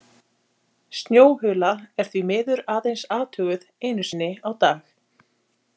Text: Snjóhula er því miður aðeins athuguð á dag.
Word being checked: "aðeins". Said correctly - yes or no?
yes